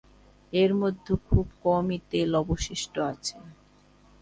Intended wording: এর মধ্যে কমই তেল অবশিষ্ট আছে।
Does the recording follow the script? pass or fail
fail